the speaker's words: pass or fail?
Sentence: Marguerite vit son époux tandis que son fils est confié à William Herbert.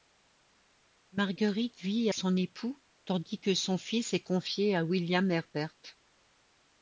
pass